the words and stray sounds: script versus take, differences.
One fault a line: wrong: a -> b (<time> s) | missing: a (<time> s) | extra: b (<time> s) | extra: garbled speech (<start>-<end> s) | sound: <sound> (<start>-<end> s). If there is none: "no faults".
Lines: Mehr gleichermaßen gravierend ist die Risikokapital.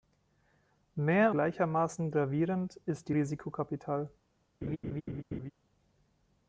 sound: laugh (4.6-5.5 s)